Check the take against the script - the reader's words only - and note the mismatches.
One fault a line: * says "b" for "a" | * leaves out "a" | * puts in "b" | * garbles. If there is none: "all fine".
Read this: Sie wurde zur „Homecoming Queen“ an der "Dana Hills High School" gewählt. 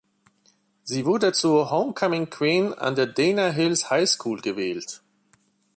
all fine